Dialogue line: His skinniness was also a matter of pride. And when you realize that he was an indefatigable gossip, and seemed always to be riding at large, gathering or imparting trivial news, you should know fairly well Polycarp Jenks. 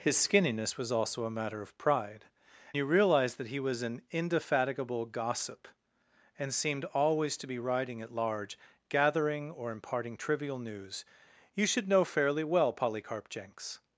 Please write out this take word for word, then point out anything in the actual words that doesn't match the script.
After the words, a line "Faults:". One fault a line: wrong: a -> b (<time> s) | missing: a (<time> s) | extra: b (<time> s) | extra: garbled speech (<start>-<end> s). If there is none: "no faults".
His skinniness was also a matter of pride. You realize that he was an indefatigable gossip, and seemed always to be riding at large, gathering or imparting trivial news, you should know fairly well Polycarp Jenks.
Faults:
missing: And when (2.2 s)